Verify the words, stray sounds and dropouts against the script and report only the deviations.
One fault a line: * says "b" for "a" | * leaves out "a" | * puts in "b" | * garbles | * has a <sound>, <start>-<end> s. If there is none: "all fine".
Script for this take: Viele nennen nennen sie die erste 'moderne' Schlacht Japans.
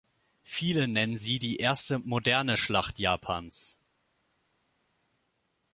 * leaves out "nennen"